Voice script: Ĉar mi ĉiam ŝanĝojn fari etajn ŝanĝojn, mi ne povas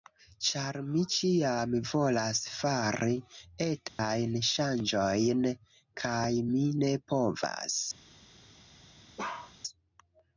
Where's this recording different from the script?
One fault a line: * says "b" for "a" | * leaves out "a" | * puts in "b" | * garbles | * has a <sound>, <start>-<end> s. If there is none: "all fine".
* says "volas" for "ŝanĝojn"
* has a dropout, 3.9-4.0 s
* puts in "kaj"
* has a bark, 9.2-9.5 s